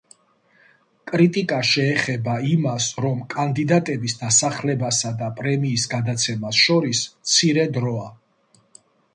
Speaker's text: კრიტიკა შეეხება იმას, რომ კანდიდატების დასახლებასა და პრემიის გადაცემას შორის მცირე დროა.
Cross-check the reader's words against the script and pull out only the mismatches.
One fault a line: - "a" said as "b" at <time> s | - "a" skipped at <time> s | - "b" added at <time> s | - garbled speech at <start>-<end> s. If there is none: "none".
none